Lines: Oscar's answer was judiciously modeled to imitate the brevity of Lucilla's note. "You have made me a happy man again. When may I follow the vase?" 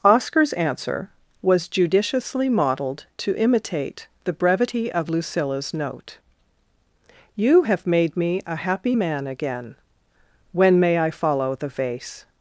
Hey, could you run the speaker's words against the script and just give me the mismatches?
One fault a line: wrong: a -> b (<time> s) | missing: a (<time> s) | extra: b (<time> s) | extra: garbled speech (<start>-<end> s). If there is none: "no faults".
no faults